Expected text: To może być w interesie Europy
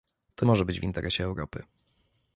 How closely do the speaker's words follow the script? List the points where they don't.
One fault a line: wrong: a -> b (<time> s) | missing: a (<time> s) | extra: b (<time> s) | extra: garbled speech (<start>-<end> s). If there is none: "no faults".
no faults